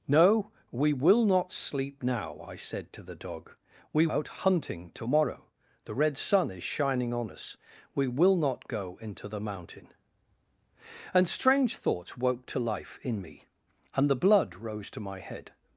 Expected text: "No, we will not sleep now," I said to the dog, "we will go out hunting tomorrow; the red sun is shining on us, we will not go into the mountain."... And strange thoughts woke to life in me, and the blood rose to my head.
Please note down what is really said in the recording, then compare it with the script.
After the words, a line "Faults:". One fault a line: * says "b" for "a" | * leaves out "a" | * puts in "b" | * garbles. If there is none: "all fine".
"No, we will not sleep now," I said to the dog, "we out hunting tomorrow; the red sun is shining on us, we will not go into the mountain."... And strange thoughts woke to life in me, and the blood rose to my head.
Faults:
* leaves out "will go"